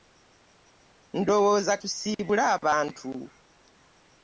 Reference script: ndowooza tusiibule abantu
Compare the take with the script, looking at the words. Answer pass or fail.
pass